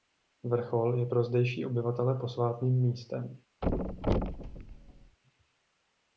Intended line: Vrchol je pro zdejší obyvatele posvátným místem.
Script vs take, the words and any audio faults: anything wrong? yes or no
yes